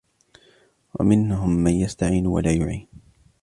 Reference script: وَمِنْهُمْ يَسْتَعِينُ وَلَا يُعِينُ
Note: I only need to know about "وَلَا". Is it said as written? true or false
true